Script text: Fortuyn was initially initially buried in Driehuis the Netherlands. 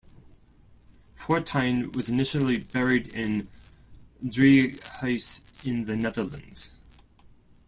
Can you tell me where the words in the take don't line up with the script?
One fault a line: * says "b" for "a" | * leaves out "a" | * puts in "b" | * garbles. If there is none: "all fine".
* leaves out "initially"
* puts in "in"